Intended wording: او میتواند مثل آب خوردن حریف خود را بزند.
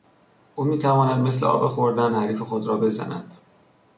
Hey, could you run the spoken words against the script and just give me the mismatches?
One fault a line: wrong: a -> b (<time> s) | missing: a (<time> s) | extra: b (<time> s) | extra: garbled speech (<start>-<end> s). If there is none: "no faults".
no faults